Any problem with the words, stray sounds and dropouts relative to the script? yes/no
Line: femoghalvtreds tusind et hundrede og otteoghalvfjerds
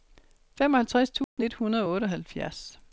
yes